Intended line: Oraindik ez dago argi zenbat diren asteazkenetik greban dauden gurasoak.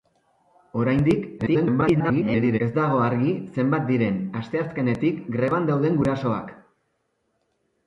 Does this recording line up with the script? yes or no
no